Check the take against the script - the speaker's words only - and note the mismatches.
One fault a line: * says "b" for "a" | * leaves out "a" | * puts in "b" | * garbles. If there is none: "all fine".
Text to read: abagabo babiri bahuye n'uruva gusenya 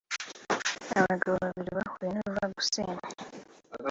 all fine